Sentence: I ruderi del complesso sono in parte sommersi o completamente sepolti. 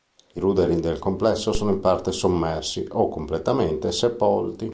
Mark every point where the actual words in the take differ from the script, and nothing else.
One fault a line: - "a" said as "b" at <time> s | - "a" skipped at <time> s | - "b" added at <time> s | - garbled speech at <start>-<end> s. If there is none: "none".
none